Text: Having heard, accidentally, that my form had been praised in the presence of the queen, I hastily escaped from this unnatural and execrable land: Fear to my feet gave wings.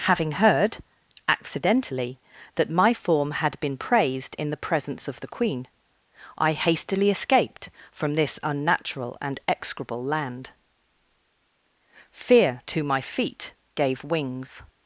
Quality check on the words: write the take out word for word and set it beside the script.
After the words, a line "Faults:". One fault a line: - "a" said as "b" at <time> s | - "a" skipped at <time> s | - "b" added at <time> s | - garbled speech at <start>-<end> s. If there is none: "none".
Having heard, accidentally, that my form had been praised in the presence of the queen, I hastily escaped from this unnatural and execrable land: Fear to my feet gave wings.
Faults:
none